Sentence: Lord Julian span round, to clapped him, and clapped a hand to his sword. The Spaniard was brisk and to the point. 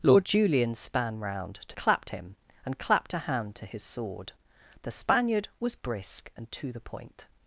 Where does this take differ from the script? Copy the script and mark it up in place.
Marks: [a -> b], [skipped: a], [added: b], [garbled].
Lord Julian span round, to clapped him, and clapped a hand to his sword. The Spaniard was brisk and to the point.